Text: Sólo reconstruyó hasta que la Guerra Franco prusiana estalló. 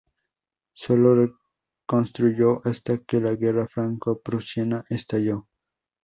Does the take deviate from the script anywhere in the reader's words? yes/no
no